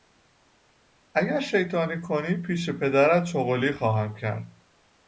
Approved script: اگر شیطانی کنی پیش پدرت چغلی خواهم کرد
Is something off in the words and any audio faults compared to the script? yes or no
no